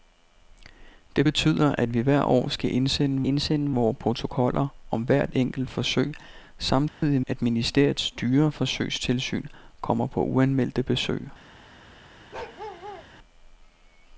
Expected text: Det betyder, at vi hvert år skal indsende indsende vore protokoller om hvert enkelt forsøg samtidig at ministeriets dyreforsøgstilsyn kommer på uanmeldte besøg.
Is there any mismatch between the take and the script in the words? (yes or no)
no